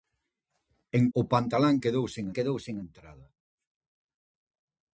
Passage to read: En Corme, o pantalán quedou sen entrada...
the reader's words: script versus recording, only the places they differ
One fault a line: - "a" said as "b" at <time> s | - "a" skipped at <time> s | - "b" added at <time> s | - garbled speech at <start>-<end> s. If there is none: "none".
- "Corme" skipped at 1.0 s
- "quedou sen" added at 2.4 s